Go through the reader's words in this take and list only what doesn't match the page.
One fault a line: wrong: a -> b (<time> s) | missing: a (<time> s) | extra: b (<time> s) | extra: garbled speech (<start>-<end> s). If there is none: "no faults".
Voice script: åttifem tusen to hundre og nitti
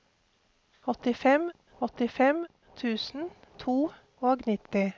extra: åttifem (1.9 s)
missing: hundre (3.8 s)